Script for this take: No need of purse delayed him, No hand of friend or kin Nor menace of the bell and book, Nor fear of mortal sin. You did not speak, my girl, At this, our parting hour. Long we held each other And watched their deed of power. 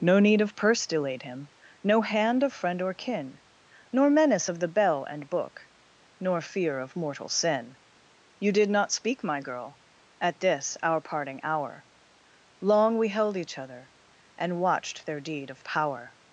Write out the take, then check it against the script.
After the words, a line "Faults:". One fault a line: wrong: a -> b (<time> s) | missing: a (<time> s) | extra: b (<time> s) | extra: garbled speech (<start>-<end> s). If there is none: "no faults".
No need of purse delayed him, No hand of friend or kin Nor menace of the bell and book, Nor fear of mortal sin. You did not speak, my girl, At this, our parting hour. Long we held each other And watched their deed of power.
Faults:
no faults